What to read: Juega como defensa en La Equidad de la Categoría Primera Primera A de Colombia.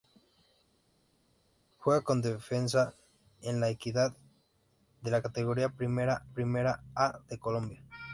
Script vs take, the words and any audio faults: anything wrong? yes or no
no